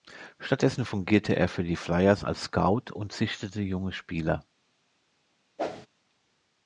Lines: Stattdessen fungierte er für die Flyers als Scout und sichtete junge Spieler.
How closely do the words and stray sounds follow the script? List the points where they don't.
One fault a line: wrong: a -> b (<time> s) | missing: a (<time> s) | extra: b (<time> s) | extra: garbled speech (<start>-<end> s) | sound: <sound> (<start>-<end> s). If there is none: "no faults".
sound: whoosh (5.6-5.9 s)